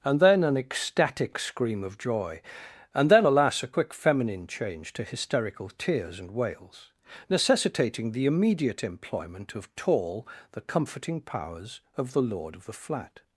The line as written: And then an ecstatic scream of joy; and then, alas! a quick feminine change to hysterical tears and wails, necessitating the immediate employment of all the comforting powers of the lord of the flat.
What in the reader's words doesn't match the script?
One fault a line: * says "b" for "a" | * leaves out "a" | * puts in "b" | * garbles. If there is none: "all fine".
* says "tall" for "all"